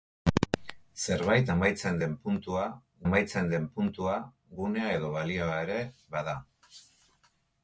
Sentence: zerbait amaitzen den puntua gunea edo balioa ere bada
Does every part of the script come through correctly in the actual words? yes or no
no